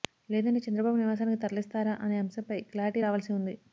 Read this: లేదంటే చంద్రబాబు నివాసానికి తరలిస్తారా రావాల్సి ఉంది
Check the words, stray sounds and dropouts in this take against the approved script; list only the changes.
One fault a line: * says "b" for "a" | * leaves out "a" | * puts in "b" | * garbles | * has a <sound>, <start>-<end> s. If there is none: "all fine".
* puts in "అనే అంశంపై క్లారిటీ"